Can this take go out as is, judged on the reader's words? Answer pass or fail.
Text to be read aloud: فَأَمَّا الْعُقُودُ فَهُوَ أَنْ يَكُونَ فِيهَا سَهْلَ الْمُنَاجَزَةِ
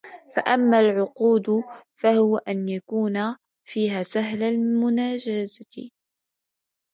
pass